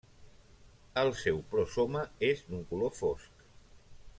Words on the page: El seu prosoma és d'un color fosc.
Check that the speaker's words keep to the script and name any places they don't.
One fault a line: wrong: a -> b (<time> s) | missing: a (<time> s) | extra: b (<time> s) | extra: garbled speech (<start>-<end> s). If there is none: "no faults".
no faults